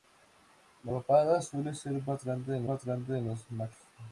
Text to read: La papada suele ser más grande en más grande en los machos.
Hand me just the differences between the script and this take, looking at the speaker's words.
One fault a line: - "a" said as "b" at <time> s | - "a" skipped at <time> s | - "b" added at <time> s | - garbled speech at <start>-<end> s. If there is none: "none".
none